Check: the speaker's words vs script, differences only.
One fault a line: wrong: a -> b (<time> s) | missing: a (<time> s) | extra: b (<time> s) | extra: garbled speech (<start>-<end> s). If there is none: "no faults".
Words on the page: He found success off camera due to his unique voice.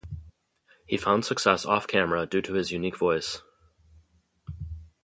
no faults